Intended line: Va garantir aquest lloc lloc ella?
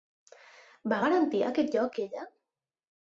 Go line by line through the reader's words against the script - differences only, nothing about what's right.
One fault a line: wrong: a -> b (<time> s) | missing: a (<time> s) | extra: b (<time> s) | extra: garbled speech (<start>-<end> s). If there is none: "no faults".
missing: lloc (2.0 s)